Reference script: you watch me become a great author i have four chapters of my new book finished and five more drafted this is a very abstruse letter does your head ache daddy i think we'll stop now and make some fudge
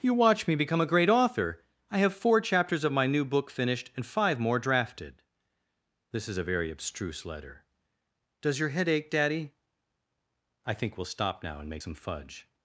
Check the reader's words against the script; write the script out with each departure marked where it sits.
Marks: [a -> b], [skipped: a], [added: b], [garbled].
you watch me become a great author i have four chapters of my new book finished and five more drafted this is a very abstruse letter does your head ache daddy i think we'll stop now and make some fudge